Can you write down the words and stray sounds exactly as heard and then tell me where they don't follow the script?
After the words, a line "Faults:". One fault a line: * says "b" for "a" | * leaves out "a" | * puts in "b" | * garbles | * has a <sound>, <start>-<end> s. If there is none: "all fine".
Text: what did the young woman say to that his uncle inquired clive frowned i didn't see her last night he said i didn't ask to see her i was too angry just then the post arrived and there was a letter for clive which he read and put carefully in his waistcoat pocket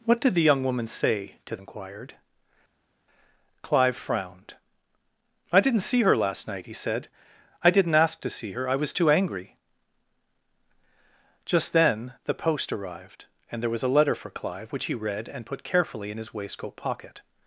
what did the young woman say to inquired clive frowned i didn't see her last night he said i didn't ask to see her i was too angry just then the post arrived and there was a letter for clive which he read and put carefully in his waistcoat pocket
Faults:
* leaves out "that his uncle"